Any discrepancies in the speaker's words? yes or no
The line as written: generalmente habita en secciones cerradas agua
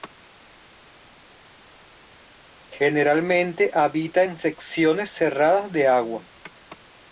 yes